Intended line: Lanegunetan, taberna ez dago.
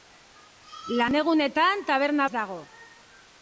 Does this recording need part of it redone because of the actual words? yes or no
no